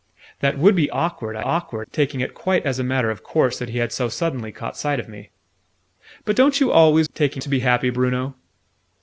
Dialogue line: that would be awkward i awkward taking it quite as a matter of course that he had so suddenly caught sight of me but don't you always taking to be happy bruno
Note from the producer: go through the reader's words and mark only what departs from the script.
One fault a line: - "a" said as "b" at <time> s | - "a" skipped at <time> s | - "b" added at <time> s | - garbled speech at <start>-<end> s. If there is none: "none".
none